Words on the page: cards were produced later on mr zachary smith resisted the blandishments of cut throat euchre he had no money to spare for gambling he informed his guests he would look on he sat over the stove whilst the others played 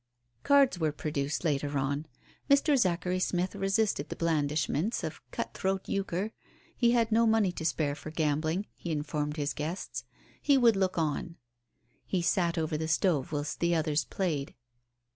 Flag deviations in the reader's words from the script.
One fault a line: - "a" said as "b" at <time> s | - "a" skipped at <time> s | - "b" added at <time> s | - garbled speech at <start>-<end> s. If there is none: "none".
none